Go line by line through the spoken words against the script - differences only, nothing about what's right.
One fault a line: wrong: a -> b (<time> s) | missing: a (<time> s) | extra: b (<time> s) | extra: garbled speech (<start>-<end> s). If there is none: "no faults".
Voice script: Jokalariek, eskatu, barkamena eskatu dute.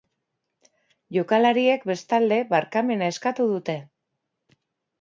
wrong: eskatu -> bestalde (1.9 s)